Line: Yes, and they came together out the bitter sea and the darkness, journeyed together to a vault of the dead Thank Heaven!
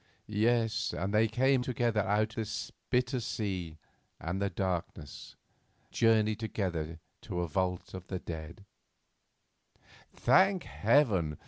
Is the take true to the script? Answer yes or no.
yes